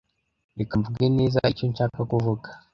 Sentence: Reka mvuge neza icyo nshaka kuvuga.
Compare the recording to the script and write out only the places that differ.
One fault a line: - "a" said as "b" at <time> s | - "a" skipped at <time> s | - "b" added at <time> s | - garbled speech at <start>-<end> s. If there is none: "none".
none